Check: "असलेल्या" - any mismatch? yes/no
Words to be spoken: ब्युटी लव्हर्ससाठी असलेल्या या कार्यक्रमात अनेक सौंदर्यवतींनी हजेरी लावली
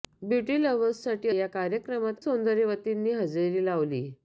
yes